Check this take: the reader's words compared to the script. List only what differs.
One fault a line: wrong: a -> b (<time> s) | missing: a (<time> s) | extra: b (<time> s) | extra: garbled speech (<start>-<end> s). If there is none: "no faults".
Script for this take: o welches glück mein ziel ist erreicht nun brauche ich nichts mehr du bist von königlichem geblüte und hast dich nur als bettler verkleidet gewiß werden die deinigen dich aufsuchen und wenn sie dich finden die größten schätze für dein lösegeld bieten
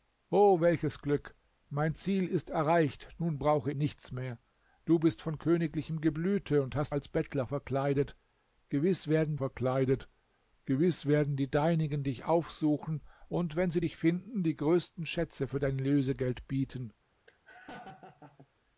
missing: ich (3.7 s)
wrong: dich nur als bettler -> als bettler verkleidet gewiß werden (6.9 s)